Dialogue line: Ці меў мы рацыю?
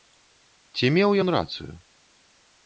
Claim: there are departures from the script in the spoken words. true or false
true